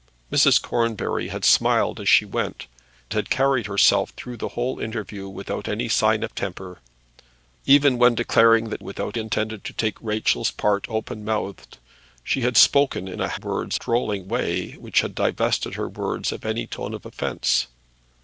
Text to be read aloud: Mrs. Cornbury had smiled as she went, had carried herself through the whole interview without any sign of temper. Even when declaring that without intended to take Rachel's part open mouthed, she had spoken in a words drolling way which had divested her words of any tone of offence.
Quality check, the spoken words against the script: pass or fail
pass